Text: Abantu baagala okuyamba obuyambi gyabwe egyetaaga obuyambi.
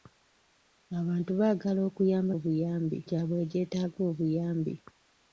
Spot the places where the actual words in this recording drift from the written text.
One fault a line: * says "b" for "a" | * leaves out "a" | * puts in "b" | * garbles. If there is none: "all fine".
all fine